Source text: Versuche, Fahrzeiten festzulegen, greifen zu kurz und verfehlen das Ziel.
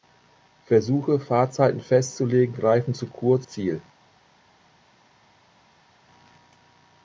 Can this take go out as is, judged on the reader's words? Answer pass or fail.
fail